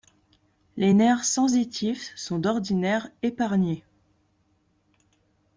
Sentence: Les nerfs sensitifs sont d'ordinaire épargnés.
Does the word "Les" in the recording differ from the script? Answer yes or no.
no